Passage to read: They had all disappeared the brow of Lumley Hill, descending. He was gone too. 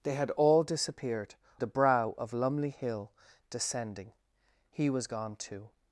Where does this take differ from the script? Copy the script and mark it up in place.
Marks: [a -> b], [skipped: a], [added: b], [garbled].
They had all disappeared the brow of Lumley Hill, descending. He was gone too.